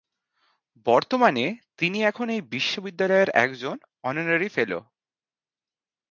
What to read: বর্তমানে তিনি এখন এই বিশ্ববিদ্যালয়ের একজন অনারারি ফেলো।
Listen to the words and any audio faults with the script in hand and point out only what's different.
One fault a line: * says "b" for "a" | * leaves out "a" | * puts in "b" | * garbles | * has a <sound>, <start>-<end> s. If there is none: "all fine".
all fine